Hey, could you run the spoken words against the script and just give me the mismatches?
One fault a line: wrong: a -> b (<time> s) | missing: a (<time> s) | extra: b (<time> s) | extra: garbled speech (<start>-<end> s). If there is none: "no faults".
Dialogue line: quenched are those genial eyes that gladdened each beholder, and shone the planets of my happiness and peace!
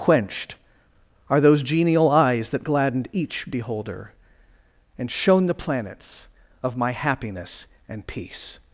no faults